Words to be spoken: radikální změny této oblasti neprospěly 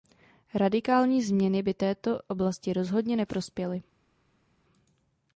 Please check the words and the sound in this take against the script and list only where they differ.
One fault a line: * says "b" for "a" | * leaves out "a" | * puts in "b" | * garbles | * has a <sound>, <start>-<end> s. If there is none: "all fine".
* puts in "by"
* puts in "rozhodně"